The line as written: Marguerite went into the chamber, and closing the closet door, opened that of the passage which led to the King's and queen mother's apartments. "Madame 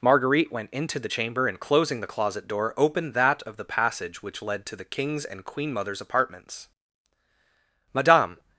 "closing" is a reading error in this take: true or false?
false